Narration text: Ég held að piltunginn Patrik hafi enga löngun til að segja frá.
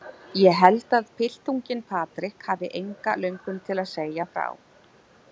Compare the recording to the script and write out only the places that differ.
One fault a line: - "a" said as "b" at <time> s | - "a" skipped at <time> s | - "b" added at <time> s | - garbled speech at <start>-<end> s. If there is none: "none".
none